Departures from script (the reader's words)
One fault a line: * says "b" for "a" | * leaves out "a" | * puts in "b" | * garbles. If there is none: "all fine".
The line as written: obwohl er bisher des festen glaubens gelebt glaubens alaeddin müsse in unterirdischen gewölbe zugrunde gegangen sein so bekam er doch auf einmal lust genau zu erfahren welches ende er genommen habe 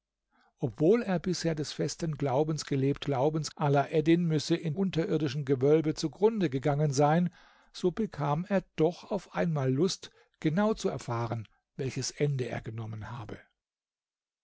all fine